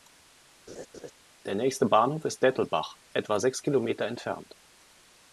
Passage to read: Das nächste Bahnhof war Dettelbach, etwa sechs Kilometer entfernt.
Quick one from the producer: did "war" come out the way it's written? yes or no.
no